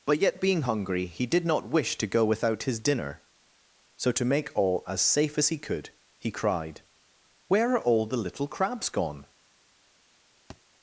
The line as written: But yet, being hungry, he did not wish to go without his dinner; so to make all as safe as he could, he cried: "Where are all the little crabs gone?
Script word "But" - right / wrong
right